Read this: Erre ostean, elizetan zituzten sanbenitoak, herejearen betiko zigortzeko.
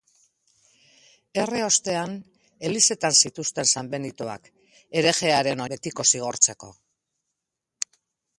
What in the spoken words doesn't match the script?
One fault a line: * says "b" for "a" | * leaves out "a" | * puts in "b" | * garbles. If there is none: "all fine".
all fine